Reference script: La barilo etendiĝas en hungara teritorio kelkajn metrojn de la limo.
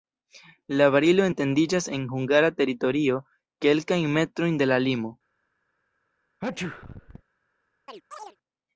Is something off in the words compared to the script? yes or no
no